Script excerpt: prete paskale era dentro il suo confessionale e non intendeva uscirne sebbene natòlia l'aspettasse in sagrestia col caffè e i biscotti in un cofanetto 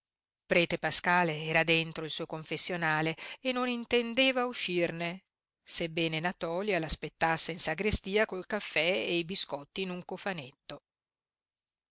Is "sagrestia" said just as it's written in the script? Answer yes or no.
yes